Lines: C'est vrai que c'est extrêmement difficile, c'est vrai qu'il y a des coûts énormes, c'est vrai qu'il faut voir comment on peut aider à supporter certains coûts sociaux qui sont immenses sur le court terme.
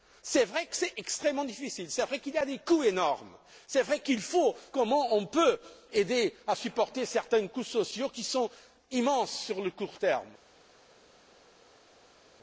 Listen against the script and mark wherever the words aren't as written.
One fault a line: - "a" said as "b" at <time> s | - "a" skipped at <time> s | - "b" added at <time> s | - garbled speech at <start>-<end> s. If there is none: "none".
- "voir" skipped at 4.5 s